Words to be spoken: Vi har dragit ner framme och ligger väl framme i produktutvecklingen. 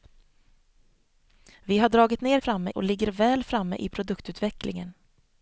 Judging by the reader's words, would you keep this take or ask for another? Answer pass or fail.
pass